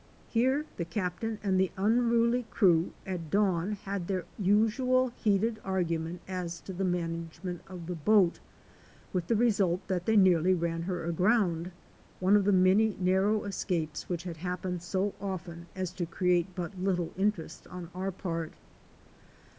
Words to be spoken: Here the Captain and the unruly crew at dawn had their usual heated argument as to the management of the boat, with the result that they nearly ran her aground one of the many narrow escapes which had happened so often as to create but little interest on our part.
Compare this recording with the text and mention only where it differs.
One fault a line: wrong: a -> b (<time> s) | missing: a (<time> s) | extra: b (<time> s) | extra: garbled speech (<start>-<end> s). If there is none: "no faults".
no faults